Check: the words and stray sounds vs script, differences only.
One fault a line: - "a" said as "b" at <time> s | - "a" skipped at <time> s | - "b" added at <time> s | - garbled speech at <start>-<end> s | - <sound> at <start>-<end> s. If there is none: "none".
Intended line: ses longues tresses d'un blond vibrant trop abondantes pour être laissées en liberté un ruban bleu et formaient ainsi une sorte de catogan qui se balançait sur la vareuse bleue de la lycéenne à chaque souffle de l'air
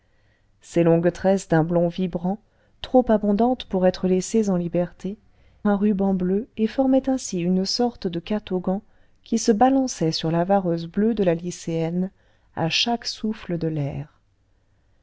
none